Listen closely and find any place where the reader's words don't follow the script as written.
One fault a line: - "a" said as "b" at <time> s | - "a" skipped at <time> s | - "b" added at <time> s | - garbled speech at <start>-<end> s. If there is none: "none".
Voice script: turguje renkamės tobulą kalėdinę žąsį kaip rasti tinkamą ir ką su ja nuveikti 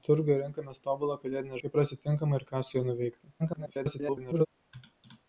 - "žąsį" skipped at 1.6 s
- garbled speech at 3.4-4.5 s